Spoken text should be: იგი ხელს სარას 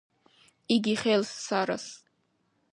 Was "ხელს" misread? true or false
false